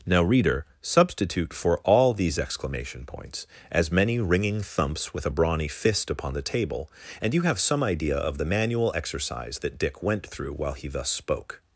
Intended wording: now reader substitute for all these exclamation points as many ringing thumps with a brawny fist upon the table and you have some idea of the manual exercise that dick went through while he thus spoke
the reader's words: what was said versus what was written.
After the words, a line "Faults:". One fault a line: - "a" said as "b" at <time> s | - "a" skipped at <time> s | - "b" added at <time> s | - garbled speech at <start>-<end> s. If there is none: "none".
now reader substitute for all these exclamation points as many ringing thumps with a brawny fist upon the table and you have some idea of the manual exercise that dick went through while he thus spoke
Faults:
none